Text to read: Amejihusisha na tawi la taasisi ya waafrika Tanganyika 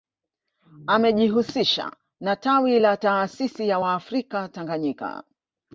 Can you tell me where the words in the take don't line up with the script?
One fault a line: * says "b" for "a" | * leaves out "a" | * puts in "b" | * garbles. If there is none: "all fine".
all fine